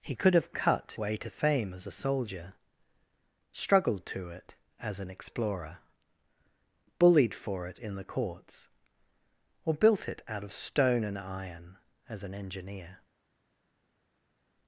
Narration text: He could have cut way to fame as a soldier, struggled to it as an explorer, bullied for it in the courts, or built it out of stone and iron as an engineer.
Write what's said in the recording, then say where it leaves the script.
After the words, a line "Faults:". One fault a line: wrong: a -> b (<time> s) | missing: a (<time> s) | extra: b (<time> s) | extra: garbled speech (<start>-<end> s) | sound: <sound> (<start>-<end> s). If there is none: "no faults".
He could have cut way to fame as a soldier, struggled to it as an explorer, bullied for it in the courts, or built it out of stone and iron as an engineer.
Faults:
no faults